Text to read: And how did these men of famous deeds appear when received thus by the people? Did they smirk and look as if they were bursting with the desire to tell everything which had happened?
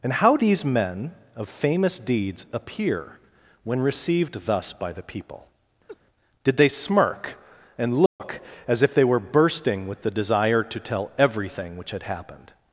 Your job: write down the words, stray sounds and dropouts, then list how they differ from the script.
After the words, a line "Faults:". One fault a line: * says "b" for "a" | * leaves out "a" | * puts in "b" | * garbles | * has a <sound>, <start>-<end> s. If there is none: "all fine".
And how these men of famous deeds appear when received thus by the people? Did they smirk and look as if they were bursting with the desire to tell everything which had happened?
Faults:
* leaves out "did"
* has a laugh, 5.9-6.0 s
* has a dropout, 8.1-8.2 s